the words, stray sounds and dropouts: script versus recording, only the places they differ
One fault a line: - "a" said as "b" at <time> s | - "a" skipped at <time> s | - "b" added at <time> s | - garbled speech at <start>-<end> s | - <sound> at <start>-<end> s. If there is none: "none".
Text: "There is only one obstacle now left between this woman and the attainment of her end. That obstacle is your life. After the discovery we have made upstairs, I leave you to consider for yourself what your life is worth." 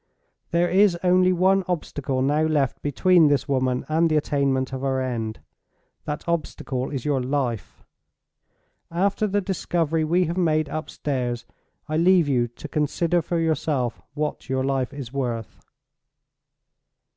none